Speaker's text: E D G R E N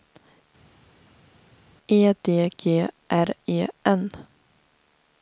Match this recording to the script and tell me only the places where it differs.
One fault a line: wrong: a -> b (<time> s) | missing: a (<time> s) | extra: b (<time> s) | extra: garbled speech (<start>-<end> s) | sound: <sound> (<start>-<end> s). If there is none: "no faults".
no faults